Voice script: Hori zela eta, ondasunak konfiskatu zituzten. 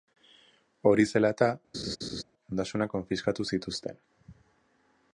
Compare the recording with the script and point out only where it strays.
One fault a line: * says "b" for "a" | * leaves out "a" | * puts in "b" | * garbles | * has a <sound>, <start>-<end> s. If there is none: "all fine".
* has a laugh, 1.7-2.2 s